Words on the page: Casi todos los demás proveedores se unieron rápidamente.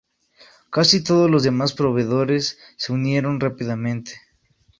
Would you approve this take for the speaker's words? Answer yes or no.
yes